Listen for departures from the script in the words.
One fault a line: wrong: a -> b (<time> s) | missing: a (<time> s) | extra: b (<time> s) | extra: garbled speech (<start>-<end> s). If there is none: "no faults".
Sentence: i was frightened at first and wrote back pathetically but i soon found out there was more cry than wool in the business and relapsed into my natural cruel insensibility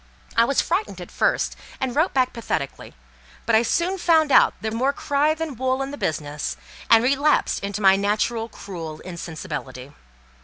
missing: was (4.7 s)